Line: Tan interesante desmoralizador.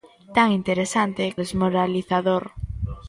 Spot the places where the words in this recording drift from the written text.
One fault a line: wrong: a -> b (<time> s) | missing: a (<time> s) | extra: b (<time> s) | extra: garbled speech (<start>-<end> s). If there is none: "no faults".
no faults